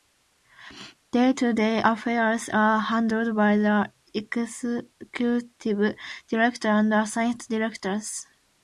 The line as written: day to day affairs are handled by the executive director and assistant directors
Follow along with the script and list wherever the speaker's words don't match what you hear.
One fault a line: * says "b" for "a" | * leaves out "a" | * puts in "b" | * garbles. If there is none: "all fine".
all fine